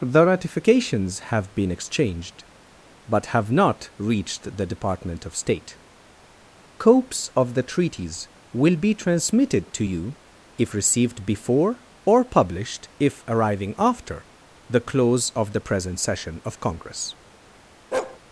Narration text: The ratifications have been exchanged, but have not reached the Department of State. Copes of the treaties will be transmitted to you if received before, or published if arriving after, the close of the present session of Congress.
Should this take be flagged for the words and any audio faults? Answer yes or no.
yes